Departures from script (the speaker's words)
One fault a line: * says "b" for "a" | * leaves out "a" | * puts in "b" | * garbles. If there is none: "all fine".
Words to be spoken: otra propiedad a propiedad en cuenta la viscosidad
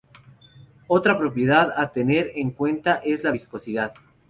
* says "tener" for "propiedad"
* puts in "es"